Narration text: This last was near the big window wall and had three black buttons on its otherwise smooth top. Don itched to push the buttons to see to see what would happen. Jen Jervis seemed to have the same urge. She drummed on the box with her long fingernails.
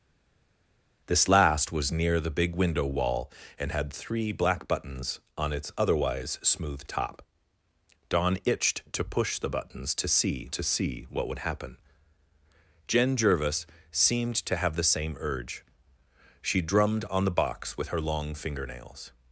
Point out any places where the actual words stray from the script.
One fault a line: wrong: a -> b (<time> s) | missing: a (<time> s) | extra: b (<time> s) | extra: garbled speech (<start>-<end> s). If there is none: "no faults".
no faults